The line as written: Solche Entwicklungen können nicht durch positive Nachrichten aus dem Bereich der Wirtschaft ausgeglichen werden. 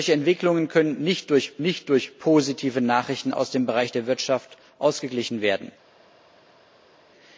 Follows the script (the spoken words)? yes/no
no